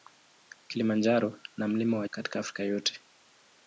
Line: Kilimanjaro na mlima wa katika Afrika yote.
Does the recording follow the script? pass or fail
pass